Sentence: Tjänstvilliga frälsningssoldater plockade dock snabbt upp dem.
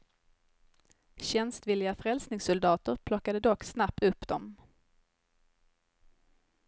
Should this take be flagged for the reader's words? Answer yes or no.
no